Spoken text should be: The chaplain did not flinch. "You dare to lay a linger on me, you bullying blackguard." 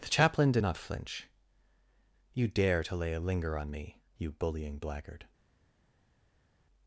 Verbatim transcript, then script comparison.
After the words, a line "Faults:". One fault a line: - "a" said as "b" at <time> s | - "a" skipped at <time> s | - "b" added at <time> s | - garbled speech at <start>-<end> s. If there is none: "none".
The chaplain did not flinch. "You dare to lay a linger on me, you bullying blackguard."
Faults:
none